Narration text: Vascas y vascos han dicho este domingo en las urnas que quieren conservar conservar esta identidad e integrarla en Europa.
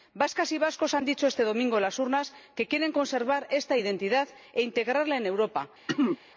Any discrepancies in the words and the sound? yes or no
yes